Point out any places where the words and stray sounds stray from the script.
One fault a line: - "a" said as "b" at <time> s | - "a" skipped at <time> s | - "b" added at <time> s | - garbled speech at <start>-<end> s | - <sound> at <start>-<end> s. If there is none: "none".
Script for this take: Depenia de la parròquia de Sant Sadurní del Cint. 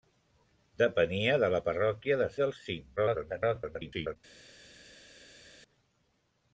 - "Sant Sadurní" skipped at 2.3 s
- garbled speech at 3.0-4.2 s